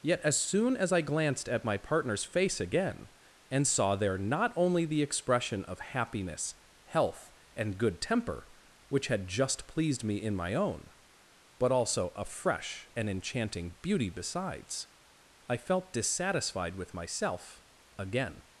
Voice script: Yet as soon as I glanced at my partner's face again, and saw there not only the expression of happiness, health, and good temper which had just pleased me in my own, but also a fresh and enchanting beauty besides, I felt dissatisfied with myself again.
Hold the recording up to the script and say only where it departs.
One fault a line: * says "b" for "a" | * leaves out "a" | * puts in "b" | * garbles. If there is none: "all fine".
all fine